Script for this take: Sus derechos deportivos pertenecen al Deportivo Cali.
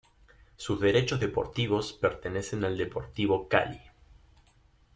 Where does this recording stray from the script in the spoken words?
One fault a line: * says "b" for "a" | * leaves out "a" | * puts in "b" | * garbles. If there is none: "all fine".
all fine